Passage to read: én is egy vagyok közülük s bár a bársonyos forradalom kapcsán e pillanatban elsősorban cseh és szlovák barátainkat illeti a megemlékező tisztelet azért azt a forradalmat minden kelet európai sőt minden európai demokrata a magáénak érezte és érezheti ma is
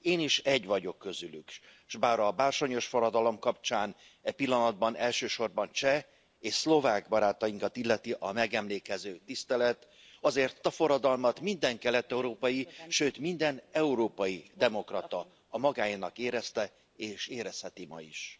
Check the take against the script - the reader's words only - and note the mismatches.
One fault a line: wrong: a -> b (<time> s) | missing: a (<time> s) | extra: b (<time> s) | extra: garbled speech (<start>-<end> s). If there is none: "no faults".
missing: azt (10.6 s)